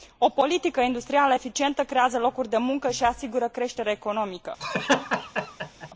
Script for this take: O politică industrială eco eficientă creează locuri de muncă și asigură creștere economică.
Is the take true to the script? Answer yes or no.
no